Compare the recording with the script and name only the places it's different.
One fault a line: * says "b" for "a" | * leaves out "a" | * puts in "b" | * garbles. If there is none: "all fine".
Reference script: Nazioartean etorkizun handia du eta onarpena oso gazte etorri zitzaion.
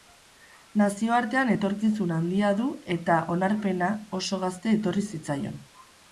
all fine